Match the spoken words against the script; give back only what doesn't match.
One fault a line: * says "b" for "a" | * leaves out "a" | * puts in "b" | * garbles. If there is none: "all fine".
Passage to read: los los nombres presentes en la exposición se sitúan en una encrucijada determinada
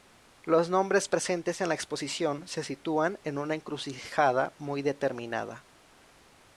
* leaves out "los"
* puts in "muy"